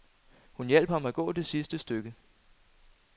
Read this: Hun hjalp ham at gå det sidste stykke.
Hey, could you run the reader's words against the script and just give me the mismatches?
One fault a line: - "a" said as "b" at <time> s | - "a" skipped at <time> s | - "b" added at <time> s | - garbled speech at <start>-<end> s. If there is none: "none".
none